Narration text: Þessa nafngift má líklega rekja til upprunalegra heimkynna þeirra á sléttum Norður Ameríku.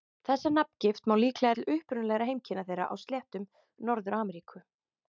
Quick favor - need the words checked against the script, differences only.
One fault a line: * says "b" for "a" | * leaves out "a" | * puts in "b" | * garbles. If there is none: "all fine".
* leaves out "rekja"